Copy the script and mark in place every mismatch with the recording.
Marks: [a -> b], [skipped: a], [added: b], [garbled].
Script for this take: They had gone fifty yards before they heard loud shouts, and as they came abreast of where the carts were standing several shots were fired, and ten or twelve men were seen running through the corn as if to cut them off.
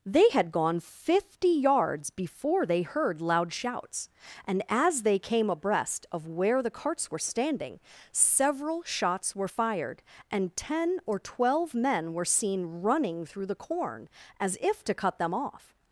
They had gone fifty yards before they heard loud shouts, and as they came abreast of where the carts were standing several shots were fired, and ten or twelve men were seen running through the corn as if to cut them off.